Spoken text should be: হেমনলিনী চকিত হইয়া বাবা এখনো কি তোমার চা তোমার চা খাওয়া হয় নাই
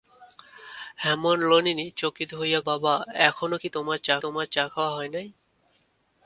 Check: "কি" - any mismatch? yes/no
no